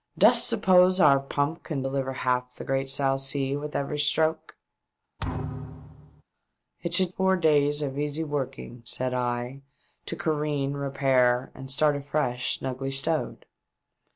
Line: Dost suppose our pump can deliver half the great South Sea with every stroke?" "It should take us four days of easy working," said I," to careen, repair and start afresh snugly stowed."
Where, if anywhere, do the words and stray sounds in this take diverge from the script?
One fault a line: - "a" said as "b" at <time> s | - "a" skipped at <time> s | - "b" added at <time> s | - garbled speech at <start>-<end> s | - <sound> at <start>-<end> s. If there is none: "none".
- thud at 5.2-6.2 s
- "take us" skipped at 7.1 s